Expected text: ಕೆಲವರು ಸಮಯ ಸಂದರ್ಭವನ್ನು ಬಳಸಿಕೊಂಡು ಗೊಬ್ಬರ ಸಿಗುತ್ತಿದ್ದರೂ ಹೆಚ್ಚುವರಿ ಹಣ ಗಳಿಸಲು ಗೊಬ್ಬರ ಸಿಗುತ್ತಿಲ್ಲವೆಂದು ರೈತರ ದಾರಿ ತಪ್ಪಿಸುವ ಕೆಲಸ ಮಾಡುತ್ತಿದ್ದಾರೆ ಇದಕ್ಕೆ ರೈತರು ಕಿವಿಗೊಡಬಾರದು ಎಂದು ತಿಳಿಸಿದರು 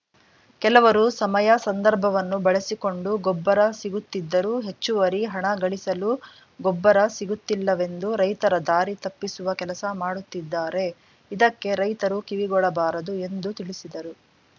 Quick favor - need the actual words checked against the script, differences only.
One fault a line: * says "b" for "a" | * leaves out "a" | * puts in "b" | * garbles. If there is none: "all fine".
all fine